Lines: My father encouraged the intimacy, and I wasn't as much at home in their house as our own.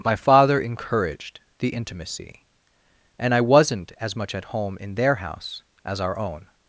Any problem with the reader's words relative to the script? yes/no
no